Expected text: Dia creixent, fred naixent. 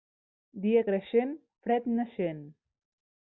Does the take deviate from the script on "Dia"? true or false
false